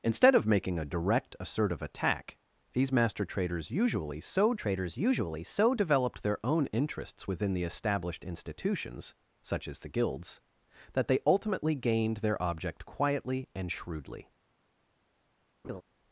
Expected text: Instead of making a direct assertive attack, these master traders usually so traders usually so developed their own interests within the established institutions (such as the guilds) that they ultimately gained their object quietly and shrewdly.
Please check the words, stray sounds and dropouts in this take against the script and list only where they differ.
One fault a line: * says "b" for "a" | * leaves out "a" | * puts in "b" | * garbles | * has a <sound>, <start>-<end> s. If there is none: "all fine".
* has a laugh, 15.6-15.8 s